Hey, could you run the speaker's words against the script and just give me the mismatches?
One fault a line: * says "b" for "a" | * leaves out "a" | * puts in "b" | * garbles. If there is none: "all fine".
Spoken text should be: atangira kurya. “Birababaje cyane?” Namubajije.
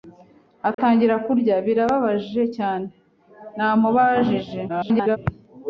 * garbles